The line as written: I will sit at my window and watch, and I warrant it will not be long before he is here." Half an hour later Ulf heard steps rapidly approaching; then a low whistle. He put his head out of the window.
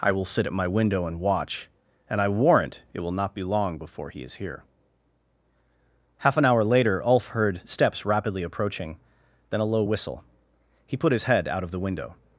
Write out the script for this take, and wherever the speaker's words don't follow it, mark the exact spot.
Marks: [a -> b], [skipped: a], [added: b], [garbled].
I will sit at my window and watch, and I warrant it will not be long before he is here." Half an hour later Ulf heard steps rapidly approaching; then a low whistle. He put his head out of the window.